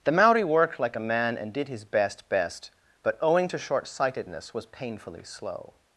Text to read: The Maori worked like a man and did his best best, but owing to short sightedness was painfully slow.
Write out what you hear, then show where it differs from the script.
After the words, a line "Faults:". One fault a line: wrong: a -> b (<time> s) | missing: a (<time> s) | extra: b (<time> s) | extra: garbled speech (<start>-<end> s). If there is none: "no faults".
The Maori worked like a man and did his best best, but owing to short sightedness was painfully slow.
Faults:
no faults